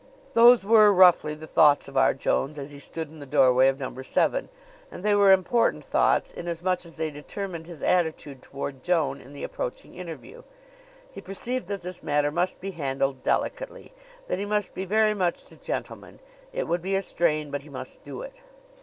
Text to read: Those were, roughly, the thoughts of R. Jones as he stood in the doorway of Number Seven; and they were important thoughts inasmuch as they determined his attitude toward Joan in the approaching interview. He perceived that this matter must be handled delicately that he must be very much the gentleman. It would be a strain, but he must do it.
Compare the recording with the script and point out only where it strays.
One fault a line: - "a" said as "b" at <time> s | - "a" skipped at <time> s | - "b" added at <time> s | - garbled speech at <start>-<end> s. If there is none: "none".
none